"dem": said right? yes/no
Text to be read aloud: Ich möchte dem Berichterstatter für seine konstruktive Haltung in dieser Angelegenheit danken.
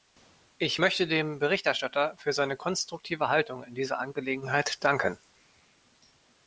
yes